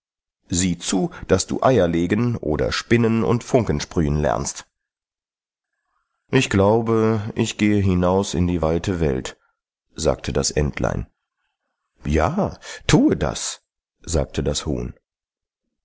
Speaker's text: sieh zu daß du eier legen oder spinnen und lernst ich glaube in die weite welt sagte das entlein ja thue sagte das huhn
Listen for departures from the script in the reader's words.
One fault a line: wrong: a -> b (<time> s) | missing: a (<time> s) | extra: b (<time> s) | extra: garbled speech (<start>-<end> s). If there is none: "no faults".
extra: funken sprühen (3.4 s)
extra: ich gehe hinaus (7.3 s)
extra: das (13.2 s)